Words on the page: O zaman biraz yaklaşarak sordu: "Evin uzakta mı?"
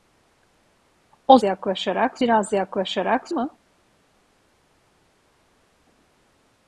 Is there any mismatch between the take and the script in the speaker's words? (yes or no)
yes